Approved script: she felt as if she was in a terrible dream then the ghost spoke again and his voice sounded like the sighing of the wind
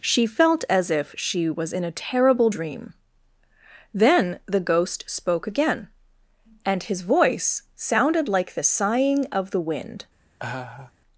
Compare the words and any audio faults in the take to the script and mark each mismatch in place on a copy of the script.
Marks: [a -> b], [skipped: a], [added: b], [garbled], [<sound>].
she felt as if she was in a terrible dream then the ghost spoke again and his voice sounded like the sighing of the wind [laugh]